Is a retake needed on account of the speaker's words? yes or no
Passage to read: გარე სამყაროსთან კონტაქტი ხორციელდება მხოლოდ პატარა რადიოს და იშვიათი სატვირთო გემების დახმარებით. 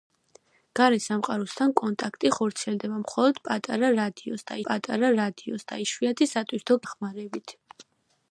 yes